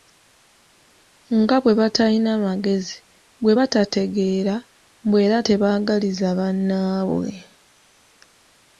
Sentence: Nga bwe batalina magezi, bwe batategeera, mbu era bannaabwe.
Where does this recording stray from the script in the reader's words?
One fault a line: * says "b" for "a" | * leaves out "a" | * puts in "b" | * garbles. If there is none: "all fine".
* puts in "tebaagaliza"